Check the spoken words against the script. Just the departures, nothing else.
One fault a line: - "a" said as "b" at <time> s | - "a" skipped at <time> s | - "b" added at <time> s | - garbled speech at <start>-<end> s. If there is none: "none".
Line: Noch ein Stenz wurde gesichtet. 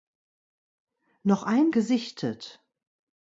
- "Stenz wurde" skipped at 1.7 s